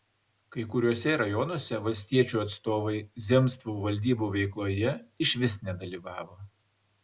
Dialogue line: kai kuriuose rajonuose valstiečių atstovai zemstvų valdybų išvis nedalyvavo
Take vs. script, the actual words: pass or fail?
fail